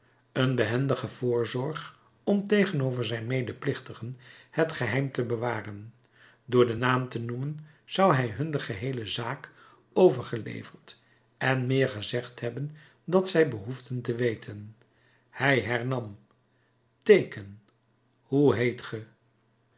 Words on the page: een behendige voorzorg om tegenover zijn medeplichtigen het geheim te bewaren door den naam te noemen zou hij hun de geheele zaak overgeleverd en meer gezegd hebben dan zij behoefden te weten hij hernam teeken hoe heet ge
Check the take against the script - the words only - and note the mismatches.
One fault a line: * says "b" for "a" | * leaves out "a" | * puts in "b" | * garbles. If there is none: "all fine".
all fine